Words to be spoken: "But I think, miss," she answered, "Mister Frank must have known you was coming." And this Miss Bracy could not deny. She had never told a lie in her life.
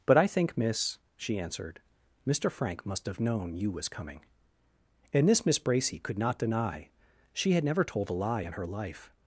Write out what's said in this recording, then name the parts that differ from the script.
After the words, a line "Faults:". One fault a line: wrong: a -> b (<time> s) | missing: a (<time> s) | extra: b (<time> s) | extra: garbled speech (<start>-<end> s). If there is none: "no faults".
"But I think, miss," she answered, "Mister Frank must have known you was coming." And this Miss Bracy could not deny. She had never told a lie in her life.
Faults:
no faults